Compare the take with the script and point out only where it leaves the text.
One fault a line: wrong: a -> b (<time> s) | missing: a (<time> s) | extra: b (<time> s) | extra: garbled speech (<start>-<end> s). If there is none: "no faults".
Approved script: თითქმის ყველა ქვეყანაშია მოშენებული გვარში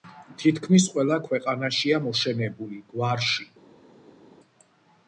no faults